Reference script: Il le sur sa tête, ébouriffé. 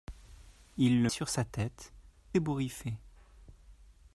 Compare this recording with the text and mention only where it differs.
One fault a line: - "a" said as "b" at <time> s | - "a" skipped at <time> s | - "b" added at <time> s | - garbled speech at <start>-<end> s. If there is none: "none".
none